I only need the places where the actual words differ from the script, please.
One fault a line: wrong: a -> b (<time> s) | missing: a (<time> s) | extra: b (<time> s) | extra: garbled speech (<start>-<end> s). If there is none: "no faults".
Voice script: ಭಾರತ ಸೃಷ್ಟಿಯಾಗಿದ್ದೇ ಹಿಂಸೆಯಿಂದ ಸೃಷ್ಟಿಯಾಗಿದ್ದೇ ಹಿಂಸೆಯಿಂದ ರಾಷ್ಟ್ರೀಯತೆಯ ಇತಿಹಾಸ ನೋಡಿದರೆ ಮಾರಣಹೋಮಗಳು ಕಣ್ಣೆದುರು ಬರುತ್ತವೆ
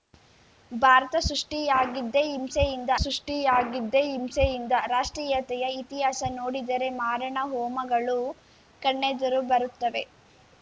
no faults